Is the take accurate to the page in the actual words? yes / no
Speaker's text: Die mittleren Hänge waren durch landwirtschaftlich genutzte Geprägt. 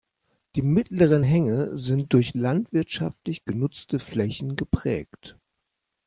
no